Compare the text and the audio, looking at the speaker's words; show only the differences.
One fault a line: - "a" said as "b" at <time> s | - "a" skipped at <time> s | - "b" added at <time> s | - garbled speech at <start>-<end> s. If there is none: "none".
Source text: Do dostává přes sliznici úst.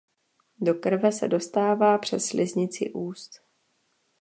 - "krve se" added at 0.7 s